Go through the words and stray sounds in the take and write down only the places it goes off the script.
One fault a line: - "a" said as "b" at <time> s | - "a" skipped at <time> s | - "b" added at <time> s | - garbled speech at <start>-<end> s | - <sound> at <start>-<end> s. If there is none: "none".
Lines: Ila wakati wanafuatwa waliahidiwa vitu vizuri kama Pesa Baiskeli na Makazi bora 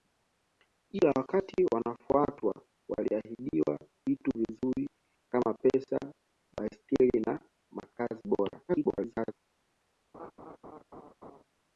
- garbled speech at 8.7-9.3 s
- laugh at 10.1-11.4 s